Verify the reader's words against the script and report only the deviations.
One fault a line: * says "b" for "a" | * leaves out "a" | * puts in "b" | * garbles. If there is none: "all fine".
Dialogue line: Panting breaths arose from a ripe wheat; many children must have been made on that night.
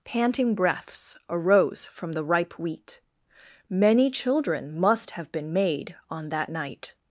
* says "the" for "a"